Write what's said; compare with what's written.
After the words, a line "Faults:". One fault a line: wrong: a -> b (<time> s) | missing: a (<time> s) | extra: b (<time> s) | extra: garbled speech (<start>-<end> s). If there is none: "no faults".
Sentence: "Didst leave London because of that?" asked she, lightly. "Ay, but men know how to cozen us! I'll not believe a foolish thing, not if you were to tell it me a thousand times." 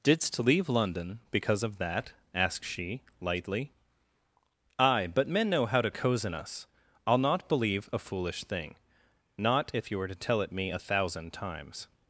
"Didst leave London because of that?" asked she, lightly. "Ay, but men know how to cozen us! I'll not believe a foolish thing, not if you were to tell it me a thousand times."
Faults:
no faults